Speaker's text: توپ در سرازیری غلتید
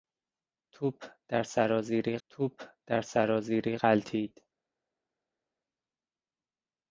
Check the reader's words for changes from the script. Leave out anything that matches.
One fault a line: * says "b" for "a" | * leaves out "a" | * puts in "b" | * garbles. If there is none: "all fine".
* puts in "توپ در سرازیری"